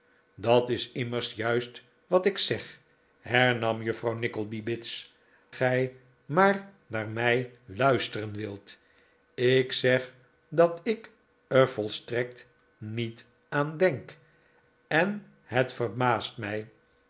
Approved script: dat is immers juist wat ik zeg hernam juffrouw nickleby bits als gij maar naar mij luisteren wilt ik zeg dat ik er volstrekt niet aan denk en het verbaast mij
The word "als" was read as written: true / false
false